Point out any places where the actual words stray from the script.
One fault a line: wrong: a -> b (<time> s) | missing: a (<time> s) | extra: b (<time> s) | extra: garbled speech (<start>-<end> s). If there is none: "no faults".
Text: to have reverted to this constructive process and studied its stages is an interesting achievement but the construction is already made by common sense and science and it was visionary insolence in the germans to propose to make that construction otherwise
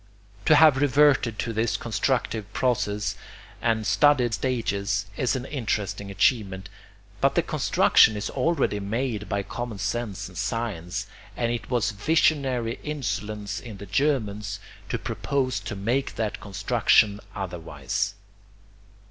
missing: its (4.3 s)